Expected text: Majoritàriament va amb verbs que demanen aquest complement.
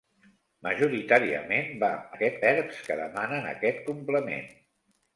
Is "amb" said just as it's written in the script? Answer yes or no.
no